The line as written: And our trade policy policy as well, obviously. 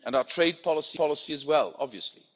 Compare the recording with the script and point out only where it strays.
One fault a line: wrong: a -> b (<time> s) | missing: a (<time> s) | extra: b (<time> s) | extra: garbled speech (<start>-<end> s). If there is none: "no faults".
no faults